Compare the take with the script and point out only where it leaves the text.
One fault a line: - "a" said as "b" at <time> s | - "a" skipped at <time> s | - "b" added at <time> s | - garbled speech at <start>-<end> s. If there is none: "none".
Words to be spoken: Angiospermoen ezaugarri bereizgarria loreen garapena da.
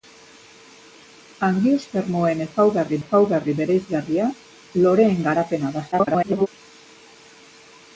- "ezaugarri" added at 3.0 s
- garbled speech at 5.9-6.5 s